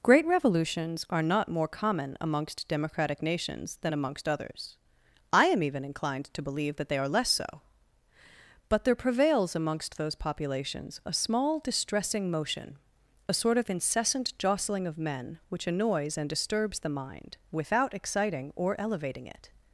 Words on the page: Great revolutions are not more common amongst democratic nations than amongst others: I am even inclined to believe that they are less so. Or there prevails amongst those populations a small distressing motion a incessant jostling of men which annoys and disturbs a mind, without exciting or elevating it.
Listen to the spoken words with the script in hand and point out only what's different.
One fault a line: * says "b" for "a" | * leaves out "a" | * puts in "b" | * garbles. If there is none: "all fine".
* says "But" for "Or"
* puts in "sort of"
* says "the" for "a"